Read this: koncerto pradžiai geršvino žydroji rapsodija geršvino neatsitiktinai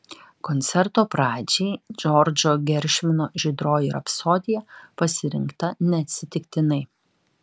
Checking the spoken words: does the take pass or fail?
fail